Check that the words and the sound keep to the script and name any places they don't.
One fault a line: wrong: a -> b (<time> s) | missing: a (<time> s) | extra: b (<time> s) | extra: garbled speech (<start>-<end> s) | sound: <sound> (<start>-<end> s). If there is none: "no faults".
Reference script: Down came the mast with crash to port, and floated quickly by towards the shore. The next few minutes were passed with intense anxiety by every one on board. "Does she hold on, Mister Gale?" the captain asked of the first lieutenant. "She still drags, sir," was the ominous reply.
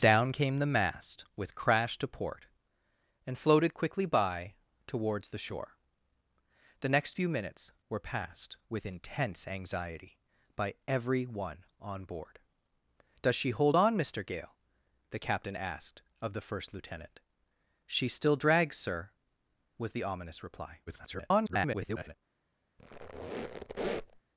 extra: garbled speech (20.9-22.1 s)
sound: squeak (22.8-24.2 s)